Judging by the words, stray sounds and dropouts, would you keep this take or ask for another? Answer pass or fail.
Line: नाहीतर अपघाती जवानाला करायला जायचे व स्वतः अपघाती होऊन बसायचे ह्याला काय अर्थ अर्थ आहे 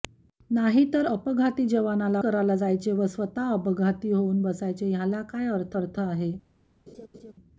fail